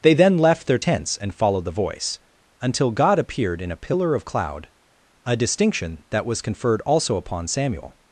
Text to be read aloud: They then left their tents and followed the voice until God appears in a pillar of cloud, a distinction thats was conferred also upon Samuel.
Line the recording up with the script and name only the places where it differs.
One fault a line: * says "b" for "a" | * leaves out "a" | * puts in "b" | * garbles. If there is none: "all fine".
* says "appeared" for "appears"
* says "that" for "thats"